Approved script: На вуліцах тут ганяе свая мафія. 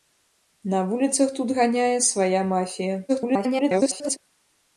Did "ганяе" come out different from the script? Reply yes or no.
no